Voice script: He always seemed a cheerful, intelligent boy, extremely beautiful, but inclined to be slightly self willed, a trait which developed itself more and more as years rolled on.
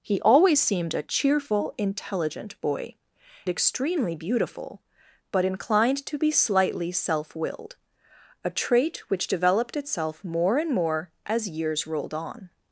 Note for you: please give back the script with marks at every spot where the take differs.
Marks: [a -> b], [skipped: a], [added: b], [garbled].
He always seemed a cheerful, intelligent boy, extremely beautiful, but inclined to be slightly self willed, a trait which developed itself more and more as years rolled on.